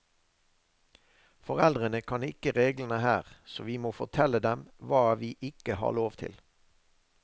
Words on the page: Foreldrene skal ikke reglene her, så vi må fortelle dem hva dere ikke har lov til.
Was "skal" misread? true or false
true